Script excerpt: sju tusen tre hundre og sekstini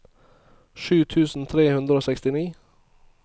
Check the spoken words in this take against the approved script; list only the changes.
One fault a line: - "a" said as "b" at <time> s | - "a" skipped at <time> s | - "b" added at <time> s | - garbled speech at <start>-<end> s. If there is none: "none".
none